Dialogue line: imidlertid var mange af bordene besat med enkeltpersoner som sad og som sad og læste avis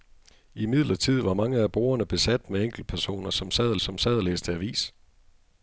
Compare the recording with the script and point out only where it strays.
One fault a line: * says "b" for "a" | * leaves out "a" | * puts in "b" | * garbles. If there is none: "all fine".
all fine